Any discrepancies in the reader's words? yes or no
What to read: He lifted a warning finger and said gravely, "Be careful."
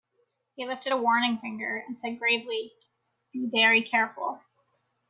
yes